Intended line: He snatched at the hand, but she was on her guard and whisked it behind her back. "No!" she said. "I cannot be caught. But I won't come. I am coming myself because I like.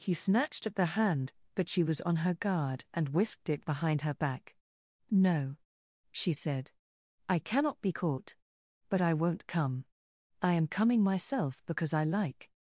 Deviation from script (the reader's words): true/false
false